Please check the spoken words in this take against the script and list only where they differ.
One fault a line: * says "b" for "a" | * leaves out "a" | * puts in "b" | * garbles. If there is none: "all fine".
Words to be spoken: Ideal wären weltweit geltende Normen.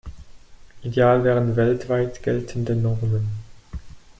all fine